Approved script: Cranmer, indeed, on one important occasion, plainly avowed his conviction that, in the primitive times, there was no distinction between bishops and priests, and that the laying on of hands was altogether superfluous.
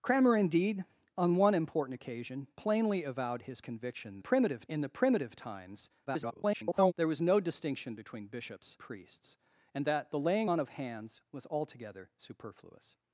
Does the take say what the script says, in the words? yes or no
no